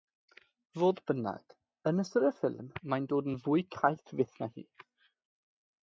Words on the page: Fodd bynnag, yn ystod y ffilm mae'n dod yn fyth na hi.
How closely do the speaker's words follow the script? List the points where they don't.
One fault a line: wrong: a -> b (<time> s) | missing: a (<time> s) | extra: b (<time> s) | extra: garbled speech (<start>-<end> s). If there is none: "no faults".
extra: fwy caeth (3.5 s)